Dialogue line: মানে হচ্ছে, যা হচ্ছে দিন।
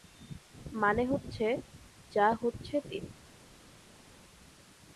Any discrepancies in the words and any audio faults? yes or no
no